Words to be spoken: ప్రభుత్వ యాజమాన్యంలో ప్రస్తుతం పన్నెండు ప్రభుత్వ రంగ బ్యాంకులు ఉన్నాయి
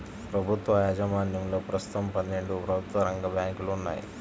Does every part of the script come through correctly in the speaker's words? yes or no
yes